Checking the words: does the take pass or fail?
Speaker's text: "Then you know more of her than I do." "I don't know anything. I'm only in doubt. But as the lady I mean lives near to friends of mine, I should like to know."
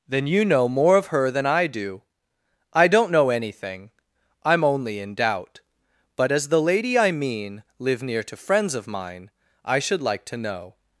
fail